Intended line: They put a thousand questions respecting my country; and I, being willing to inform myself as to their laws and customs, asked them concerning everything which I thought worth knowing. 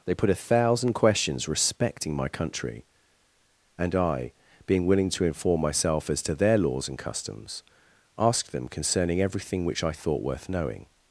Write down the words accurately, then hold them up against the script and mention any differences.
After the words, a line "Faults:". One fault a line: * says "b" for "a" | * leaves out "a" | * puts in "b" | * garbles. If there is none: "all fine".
They put a thousand questions respecting my country; and I, being willing to inform myself as to their laws and customs, asked them concerning everything which I thought worth knowing.
Faults:
all fine